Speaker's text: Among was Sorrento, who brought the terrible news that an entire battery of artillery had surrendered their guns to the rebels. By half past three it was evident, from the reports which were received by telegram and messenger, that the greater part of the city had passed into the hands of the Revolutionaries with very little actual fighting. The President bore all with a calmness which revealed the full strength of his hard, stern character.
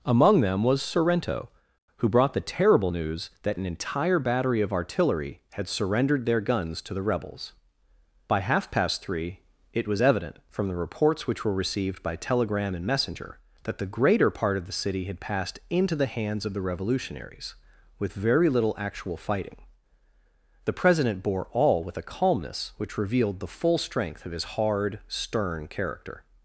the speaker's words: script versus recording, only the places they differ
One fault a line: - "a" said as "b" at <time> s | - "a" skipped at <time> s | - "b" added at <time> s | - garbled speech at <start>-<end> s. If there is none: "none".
- "them" added at 0.4 s